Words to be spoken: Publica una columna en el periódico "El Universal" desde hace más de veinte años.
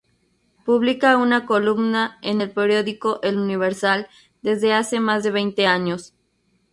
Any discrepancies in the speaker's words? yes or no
no